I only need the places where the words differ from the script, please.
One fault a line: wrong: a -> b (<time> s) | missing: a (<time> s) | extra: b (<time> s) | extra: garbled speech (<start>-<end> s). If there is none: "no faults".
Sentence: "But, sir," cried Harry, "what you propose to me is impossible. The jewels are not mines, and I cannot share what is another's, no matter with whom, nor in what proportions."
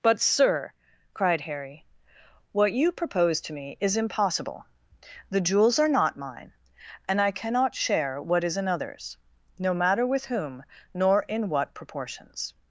wrong: mines -> mine (6.2 s)